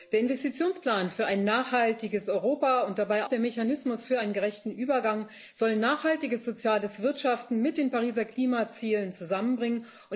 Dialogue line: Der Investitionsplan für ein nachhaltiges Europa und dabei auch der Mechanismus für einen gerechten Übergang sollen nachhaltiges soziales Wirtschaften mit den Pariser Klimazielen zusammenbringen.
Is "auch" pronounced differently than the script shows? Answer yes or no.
yes